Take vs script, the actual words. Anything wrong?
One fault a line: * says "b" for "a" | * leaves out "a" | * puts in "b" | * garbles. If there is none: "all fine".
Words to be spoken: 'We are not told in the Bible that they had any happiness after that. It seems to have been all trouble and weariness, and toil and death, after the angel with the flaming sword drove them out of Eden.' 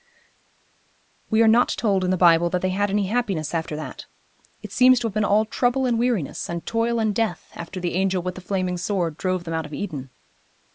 all fine